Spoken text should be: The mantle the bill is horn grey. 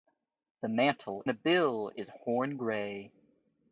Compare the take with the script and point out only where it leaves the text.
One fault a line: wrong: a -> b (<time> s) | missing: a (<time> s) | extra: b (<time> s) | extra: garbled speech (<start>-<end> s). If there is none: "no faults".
no faults